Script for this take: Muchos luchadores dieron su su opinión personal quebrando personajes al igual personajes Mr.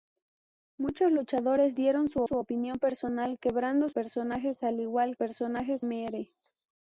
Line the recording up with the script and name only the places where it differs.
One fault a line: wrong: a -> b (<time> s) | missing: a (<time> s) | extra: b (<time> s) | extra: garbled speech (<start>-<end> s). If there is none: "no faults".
no faults